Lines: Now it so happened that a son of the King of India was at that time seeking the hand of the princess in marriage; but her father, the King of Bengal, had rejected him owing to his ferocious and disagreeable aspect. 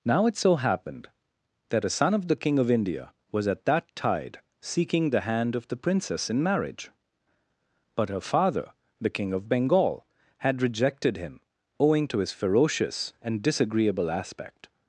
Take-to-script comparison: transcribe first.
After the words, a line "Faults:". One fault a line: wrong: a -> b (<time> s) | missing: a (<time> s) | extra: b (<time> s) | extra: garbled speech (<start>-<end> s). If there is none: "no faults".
Now it so happened that a son of the King of India was at that tide seeking the hand of the princess in marriage; but her father, the King of Bengal, had rejected him owing to his ferocious and disagreeable aspect.
Faults:
wrong: time -> tide (4.0 s)